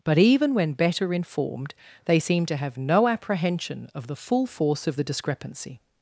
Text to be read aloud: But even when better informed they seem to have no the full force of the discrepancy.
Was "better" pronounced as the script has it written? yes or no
yes